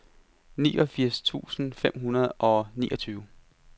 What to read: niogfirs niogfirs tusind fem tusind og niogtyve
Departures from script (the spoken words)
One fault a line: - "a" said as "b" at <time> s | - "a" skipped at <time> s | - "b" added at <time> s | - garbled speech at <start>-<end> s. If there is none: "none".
- "niogfirs" skipped at 1.2 s
- "tusind" said as "hundrede" at 2.0 s